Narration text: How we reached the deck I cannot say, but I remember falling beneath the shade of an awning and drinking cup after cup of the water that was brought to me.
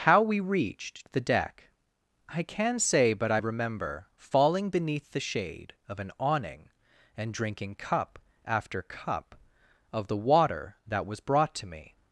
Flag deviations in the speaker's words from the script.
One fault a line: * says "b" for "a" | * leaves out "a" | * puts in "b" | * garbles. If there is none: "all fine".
* says "can" for "cannot"